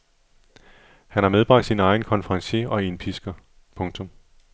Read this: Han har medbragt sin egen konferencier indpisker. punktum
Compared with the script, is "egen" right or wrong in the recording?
right